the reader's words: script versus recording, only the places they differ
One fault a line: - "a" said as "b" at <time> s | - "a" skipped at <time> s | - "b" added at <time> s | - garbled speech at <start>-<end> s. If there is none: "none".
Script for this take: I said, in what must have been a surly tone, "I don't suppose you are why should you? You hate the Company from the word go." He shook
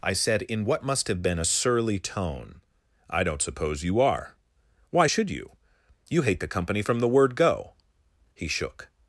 none